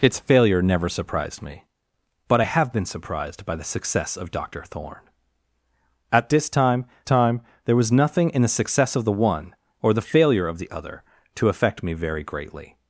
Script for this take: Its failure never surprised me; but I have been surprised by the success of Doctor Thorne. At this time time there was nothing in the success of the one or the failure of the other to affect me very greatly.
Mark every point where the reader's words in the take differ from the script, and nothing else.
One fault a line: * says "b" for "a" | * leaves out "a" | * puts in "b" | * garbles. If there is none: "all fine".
all fine